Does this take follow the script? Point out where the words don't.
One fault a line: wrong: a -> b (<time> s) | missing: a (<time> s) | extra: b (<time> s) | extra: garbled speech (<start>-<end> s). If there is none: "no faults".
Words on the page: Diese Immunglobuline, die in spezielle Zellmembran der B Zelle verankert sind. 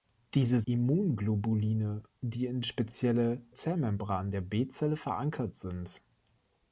no faults